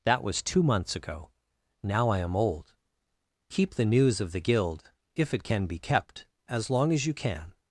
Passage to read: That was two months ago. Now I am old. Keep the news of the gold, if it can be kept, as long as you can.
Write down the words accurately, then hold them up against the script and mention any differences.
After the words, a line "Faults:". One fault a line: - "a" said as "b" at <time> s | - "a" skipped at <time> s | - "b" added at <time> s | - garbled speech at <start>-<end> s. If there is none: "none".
That was two months ago. Now I am old. Keep the news of the guild, if it can be kept, as long as you can.
Faults:
- "gold" said as "guild" at 4.4 s